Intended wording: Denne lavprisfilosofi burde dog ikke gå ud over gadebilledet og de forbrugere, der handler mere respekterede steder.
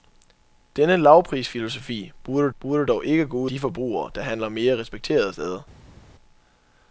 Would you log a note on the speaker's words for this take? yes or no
yes